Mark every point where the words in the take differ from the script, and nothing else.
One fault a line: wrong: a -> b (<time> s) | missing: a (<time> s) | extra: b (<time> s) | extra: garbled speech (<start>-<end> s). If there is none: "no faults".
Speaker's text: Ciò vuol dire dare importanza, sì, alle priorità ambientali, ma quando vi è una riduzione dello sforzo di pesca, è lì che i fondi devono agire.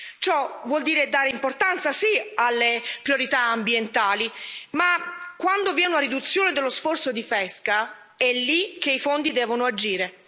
no faults